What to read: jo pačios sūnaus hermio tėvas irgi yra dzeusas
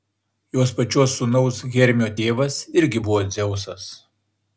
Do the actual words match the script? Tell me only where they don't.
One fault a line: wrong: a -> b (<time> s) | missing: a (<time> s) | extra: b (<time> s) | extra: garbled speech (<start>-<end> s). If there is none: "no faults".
wrong: jo -> jos (0.6 s)
wrong: yra -> buvo (3.1 s)